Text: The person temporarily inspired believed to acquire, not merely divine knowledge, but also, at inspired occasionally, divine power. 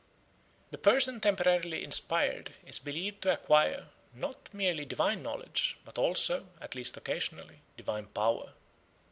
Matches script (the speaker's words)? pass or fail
fail